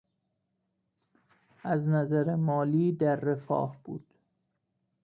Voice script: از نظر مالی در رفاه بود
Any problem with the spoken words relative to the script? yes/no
no